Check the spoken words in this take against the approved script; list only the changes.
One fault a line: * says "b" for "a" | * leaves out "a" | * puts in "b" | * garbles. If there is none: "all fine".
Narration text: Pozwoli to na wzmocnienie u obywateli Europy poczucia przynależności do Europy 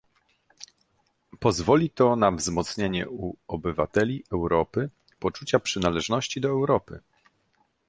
all fine